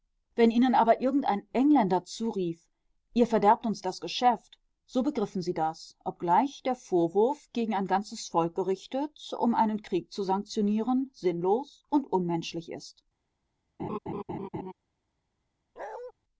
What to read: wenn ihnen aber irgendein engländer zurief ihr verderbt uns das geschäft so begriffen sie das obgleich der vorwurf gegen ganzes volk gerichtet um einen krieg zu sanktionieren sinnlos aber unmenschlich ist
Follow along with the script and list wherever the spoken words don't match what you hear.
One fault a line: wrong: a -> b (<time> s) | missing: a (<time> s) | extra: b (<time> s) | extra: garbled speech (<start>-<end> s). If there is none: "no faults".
extra: ein (7.7 s)
wrong: aber -> und (11.9 s)